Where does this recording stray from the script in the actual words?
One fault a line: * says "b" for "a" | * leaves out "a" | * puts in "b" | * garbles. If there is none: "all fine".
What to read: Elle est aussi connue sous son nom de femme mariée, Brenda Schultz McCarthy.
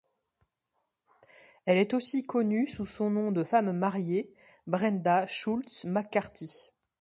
all fine